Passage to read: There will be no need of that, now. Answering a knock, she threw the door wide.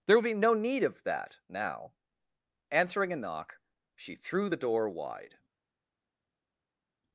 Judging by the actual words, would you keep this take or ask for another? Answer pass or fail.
pass